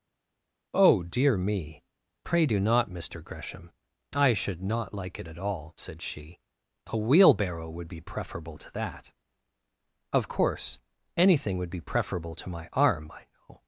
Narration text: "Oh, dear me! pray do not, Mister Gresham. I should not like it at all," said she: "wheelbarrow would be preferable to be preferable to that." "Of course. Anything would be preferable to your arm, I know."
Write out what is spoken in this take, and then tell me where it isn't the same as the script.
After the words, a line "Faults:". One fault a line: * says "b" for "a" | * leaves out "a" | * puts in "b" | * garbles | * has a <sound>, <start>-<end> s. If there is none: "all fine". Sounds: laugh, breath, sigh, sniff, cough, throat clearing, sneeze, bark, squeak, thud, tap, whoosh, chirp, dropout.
"Oh, dear me! pray do not, Mister Gresham. I should not like it at all," said she: "a wheelbarrow would be preferable to that." "Of course. Anything would be preferable to my arm, I know."
Faults:
* puts in "a"
* leaves out "be preferable to"
* says "my" for "your"